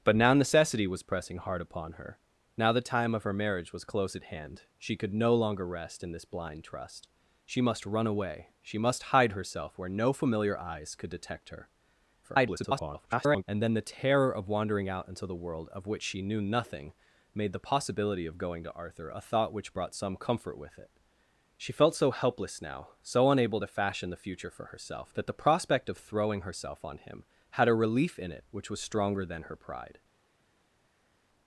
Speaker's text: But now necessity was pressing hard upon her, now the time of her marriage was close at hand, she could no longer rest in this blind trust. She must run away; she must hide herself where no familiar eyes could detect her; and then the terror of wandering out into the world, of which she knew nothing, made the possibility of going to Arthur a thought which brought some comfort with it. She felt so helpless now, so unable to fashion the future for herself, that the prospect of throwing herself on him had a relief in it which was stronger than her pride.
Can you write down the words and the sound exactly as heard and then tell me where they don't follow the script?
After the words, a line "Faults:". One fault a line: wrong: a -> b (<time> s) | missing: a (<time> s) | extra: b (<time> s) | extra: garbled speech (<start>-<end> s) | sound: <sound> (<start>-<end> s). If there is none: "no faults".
But now necessity was pressing hard upon her, now the time of her marriage was close at hand, she could no longer rest in this blind trust. She must run away; she must hide herself where no familiar eyes could detect her; [garbled] and then the terror of wandering out into the world, of which she knew nothing, made the possibility of going to Arthur a thought which brought some comfort with it. She felt so helpless now, so unable to fashion the future for herself, that the prospect of throwing herself on him had a relief in it which was stronger than her pride.
Faults:
extra: garbled speech (12.2-13.4 s)